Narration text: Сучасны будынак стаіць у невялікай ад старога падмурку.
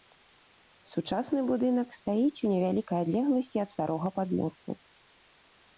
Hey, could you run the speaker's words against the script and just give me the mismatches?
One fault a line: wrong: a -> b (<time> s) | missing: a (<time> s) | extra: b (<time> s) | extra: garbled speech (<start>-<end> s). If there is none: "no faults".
extra: адлегласці (3.1 s)